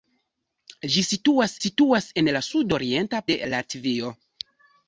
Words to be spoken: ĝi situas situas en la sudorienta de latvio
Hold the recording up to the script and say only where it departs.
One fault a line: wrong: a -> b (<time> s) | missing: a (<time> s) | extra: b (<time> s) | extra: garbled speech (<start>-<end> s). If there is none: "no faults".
no faults